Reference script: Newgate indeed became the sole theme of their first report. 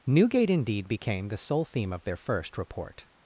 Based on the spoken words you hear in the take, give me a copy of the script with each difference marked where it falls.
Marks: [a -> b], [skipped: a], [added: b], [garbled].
Newgate indeed became the sole theme of their first report.